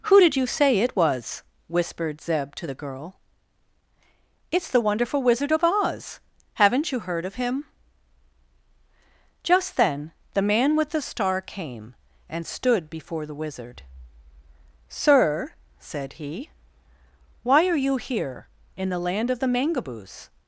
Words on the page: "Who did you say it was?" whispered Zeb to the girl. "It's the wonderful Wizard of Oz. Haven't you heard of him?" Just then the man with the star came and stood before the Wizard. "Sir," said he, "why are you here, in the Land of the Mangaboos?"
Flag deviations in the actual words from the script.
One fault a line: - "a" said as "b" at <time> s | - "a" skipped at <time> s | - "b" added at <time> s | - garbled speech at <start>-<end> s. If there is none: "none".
none